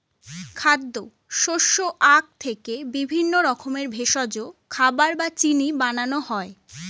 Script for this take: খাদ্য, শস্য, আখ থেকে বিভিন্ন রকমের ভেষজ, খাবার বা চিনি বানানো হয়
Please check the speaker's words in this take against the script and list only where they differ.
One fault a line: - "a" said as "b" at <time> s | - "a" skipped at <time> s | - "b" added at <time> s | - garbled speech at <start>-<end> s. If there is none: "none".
none